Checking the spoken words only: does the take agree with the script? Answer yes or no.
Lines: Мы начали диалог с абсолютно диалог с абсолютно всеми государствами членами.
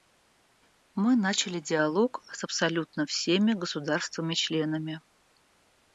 no